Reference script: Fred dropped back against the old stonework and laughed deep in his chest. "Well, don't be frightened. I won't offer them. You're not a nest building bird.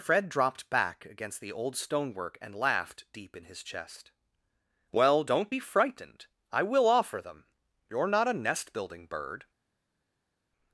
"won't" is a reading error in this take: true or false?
true